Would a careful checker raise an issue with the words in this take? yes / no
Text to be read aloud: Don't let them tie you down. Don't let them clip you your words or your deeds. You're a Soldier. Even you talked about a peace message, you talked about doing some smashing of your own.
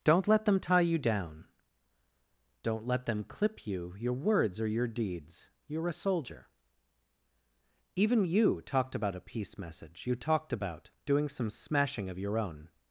no